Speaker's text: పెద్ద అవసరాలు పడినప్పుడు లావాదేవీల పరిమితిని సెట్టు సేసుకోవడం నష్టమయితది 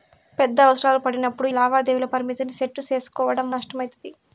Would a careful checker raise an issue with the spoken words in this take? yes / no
no